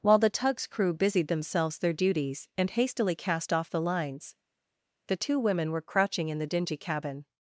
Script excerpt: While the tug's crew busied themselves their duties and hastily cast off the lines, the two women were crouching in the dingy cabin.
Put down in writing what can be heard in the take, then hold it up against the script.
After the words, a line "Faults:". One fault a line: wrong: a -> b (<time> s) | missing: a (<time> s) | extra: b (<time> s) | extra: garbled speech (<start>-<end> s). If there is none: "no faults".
While the tug's crew busied themselves their duties and hastily cast off the lines, the two women were crouching in the dingy cabin.
Faults:
no faults